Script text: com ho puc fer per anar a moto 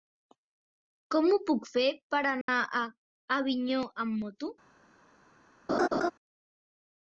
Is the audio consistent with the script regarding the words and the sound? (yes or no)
no